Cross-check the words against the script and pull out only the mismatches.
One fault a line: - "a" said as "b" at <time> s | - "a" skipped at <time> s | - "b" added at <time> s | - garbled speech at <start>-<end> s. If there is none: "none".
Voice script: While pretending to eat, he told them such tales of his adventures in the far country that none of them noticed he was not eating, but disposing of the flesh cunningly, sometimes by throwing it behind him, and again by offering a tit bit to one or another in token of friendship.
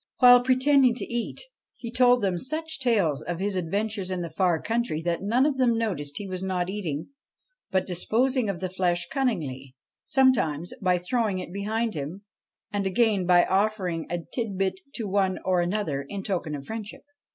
none